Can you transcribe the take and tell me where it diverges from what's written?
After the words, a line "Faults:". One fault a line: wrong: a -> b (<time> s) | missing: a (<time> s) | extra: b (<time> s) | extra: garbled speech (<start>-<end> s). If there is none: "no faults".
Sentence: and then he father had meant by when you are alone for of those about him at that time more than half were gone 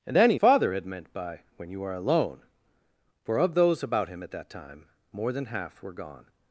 and then he father had meant by when you are alone for of those about him at that time more than half were gone
Faults:
no faults